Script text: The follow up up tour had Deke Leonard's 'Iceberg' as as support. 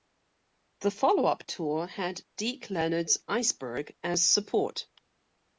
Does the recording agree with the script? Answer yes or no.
no